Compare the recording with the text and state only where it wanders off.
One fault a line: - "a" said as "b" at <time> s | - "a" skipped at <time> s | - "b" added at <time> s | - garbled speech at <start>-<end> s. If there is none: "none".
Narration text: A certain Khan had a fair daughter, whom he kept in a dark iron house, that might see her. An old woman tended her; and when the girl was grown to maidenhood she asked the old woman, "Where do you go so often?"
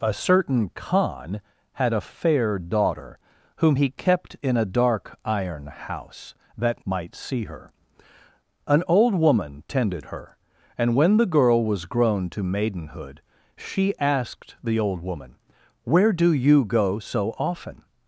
none